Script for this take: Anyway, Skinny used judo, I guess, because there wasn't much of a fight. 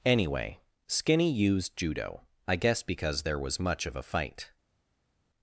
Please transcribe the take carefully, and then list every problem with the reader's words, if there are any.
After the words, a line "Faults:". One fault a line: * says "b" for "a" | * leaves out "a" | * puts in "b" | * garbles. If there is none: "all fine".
Anyway, Skinny used judo, I guess, because there was much of a fight.
Faults:
* says "was" for "wasn't"